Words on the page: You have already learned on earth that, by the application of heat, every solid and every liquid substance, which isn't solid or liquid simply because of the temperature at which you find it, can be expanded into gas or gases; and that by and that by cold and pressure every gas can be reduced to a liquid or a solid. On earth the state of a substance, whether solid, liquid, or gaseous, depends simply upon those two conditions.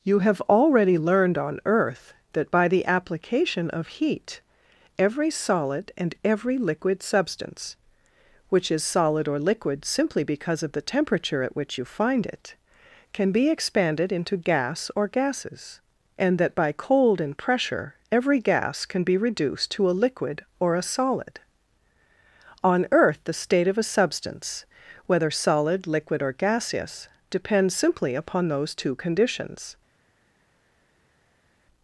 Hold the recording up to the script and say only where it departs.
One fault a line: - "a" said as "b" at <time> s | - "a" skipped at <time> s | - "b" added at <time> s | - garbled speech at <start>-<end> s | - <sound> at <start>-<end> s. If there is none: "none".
- "isn't" said as "is" at 8.7 s
- "and that by" skipped at 16.7 s